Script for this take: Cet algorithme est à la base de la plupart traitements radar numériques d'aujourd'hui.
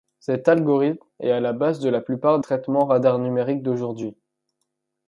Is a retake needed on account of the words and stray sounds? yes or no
no